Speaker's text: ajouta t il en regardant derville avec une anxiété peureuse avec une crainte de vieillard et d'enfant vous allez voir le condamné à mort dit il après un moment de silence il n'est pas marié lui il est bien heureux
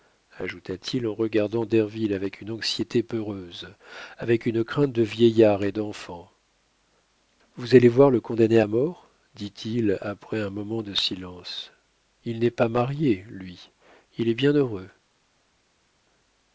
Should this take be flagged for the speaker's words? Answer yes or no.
no